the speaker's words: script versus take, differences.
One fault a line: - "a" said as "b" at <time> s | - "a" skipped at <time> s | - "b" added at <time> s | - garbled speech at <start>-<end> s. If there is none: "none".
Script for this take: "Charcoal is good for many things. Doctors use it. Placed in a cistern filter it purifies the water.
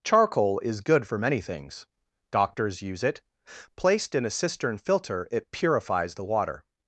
none